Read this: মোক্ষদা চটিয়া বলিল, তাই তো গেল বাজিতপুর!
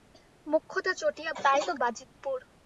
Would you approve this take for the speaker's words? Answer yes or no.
no